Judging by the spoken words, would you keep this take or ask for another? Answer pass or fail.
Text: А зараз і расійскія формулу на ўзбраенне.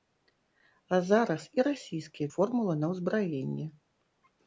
pass